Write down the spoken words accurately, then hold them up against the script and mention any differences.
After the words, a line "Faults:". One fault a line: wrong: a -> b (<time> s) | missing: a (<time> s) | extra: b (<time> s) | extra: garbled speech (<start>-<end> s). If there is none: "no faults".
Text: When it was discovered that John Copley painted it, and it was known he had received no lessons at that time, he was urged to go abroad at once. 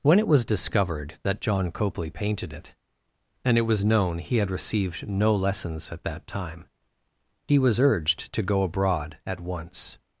When it was discovered that John Copley painted it, and it was known he had received no lessons at that time, he was urged to go abroad at once.
Faults:
no faults